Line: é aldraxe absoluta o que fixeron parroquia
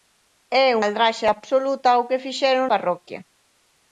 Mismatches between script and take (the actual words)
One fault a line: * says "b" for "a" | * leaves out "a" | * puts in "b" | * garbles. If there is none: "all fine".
all fine